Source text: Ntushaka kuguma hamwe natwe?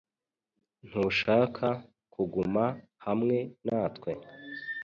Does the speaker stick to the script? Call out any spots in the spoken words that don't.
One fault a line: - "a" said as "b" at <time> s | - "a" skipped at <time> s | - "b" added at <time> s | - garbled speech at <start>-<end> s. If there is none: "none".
none